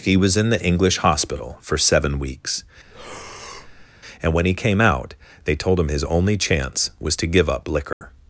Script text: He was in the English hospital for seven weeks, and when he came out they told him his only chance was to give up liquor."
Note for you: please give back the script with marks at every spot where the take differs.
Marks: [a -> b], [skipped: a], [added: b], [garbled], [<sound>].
He was in the English hospital for seven weeks, [breath] and when he came out they told him his only chance was to give up liquor." [dropout]